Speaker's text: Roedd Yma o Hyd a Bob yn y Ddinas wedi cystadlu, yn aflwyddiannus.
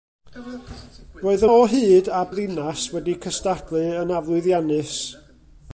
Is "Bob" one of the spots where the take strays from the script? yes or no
yes